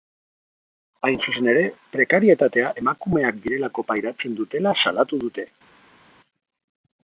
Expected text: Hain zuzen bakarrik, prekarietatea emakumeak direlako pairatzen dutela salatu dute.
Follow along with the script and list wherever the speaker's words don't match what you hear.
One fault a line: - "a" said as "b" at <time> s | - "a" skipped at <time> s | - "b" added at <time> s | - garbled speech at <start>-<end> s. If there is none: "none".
- "bakarrik" said as "ere" at 1.5 s